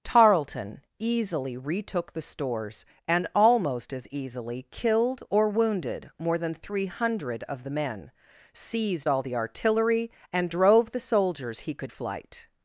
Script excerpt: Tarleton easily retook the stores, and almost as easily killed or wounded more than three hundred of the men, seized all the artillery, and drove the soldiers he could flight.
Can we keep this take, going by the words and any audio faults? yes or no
yes